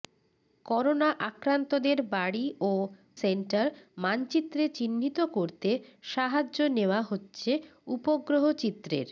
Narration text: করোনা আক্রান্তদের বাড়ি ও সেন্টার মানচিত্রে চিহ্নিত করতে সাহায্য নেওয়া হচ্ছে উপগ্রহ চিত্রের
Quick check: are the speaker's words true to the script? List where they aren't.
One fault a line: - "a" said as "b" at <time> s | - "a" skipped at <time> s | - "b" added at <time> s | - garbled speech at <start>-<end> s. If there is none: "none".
none